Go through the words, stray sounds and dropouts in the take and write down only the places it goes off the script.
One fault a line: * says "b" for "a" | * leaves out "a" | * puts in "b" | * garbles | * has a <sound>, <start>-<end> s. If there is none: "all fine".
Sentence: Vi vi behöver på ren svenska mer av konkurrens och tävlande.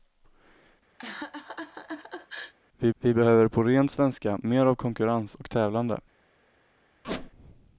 * has a laugh, 1.0-2.5 s
* has a squeak, 7.0-7.3 s